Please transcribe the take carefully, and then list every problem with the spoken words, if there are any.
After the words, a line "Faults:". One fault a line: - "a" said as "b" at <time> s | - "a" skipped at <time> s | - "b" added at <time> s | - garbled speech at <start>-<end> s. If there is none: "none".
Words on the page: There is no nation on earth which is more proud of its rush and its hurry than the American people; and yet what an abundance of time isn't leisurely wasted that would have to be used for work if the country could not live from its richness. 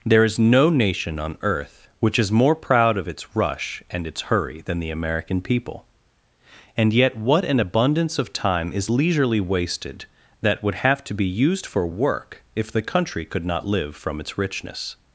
There is no nation on earth which is more proud of its rush and its hurry than the American people; and yet what an abundance of time is leisurely wasted that would have to be used for work if the country could not live from its richness.
Faults:
- "isn't" said as "is" at 8.7 s